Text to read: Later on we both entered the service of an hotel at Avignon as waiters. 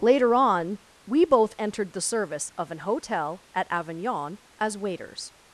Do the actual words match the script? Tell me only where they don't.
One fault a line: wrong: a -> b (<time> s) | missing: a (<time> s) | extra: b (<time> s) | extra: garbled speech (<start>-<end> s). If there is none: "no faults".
no faults